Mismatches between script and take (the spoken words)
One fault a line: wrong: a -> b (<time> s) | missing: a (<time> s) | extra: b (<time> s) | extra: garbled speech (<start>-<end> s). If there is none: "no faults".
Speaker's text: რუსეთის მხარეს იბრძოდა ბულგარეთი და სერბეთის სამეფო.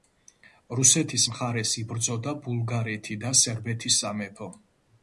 no faults